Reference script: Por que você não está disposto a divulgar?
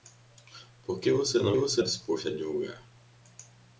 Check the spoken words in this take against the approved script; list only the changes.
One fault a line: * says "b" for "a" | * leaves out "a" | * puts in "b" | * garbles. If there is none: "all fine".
* says "você" for "está"